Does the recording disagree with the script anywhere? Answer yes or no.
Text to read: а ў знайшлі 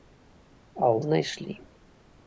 no